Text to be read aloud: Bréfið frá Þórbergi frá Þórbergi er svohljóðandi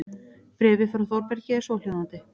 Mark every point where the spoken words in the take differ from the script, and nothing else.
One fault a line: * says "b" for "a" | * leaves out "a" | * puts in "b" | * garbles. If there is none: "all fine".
* leaves out "frá Þórbergi"